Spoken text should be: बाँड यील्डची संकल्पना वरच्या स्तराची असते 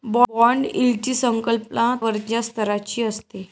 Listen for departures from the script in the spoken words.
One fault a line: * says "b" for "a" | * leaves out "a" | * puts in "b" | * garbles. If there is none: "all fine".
all fine